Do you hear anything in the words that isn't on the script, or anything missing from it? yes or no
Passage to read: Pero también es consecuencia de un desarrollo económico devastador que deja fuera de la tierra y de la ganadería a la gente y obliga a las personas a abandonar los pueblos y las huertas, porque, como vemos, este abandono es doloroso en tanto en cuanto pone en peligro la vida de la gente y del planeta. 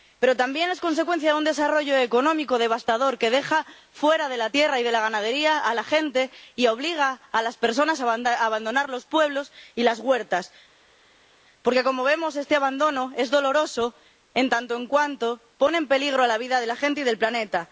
no